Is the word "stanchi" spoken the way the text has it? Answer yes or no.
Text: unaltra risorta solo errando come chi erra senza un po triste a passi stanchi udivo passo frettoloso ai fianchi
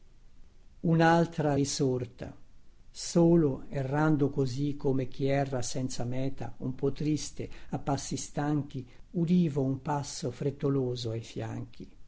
yes